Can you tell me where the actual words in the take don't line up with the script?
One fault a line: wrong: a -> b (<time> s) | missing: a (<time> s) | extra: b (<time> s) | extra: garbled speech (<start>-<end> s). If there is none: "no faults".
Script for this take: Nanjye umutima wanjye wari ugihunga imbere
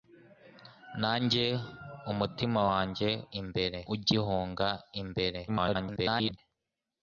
wrong: wari -> imbere (3.4 s)
extra: garbled speech (5.5-6.4 s)